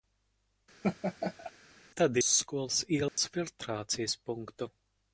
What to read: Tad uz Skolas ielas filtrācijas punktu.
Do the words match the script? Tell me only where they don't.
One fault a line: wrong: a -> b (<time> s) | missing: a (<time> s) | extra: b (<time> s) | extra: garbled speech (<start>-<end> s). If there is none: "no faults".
no faults